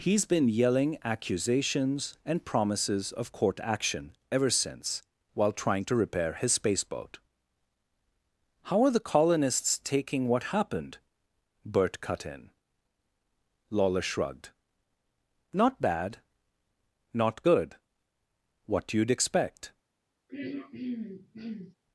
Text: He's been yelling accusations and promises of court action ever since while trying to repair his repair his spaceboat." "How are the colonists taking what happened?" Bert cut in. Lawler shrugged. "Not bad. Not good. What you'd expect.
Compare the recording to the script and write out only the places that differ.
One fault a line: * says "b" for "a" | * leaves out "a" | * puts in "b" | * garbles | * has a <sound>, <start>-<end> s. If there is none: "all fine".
* leaves out "repair his"
* has a throat clearing, 20.3-21.8 s